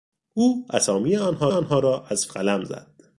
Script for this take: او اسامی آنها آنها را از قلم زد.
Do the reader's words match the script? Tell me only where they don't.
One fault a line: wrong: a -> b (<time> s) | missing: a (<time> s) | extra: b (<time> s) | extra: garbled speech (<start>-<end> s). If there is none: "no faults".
no faults